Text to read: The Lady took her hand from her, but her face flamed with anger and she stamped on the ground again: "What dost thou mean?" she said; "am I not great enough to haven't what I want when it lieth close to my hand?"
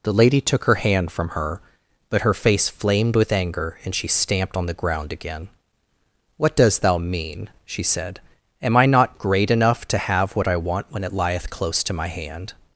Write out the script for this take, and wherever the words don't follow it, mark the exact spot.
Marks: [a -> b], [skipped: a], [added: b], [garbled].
The Lady took her hand from her, but her face flamed with anger and she stamped on the ground again: "What dost thou mean?" she said; "am I not great enough to [haven't -> have] what I want when it lieth close to my hand?"